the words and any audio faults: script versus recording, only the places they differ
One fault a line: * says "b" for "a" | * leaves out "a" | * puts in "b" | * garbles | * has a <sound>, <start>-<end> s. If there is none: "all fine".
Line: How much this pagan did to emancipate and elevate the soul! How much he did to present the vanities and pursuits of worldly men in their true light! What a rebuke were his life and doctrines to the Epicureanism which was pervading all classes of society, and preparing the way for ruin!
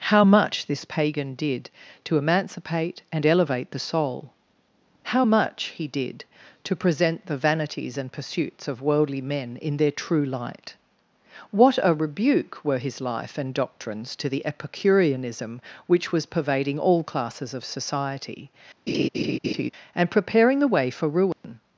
* has a laugh, 18.9-19.7 s
* has a dropout, 21.3-21.4 s